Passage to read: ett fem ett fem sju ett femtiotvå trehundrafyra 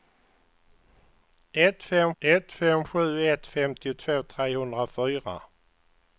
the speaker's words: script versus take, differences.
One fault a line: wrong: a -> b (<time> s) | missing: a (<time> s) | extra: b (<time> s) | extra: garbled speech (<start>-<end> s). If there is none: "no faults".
no faults